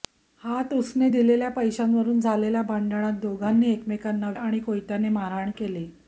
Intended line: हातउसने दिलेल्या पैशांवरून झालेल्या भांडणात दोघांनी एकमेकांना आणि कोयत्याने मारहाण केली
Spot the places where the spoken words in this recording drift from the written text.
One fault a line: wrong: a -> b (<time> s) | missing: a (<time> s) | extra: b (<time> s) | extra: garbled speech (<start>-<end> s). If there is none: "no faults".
no faults